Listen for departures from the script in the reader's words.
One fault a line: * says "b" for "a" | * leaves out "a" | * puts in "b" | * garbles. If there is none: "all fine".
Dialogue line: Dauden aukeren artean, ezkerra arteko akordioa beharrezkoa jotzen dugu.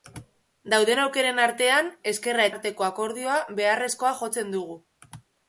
all fine